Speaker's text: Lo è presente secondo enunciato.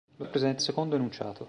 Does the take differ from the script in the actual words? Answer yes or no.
no